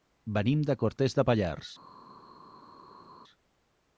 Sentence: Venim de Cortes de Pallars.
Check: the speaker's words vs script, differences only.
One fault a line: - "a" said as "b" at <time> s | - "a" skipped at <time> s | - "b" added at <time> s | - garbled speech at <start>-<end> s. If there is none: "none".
none